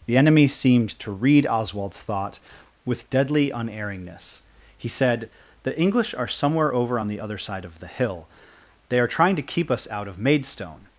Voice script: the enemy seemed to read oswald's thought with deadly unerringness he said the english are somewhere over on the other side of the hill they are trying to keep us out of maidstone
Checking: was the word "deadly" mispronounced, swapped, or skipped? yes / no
no